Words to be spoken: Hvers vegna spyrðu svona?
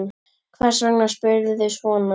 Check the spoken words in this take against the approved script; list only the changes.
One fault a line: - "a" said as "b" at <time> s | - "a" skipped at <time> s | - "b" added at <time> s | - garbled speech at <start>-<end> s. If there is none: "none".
none